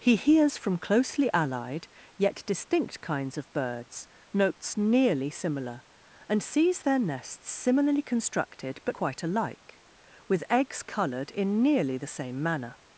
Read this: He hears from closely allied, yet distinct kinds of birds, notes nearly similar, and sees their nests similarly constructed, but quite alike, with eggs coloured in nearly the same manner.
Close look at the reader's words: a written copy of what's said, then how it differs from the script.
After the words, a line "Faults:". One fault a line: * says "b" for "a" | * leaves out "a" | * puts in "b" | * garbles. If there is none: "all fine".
He hears from closely allied, yet distinct kinds of birds, notes nearly similar, and sees their nests similarly constructed, but quite alike, with eggs coloured in nearly the same manner.
Faults:
all fine